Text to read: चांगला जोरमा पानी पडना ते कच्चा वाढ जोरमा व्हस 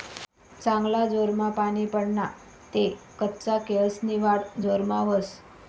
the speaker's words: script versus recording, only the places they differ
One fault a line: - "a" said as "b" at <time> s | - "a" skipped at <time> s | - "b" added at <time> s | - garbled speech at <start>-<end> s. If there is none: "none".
- "केयेसनी" added at 3.7 s